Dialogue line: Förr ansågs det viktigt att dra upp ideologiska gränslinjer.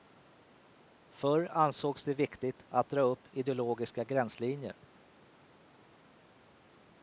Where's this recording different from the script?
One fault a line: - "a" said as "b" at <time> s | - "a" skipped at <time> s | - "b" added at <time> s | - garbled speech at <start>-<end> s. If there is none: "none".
none